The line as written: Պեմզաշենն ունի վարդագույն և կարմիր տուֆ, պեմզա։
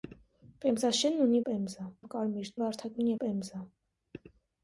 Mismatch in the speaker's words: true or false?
true